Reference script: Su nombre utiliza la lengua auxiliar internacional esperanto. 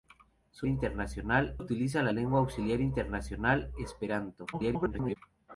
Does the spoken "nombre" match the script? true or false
false